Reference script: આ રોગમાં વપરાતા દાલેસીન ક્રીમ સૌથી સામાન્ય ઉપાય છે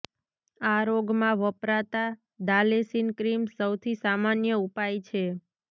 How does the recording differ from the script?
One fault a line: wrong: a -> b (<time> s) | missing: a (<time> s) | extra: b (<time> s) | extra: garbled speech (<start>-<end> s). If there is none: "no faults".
no faults